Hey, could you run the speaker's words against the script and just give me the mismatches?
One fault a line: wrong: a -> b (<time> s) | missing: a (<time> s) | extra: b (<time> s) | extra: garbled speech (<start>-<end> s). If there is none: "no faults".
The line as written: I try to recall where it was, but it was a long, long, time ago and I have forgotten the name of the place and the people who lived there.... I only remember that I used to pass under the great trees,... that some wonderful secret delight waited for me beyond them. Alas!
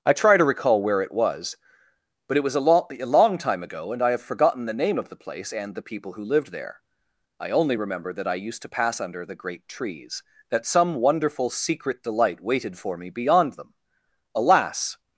wrong: long -> lo a (2.6 s)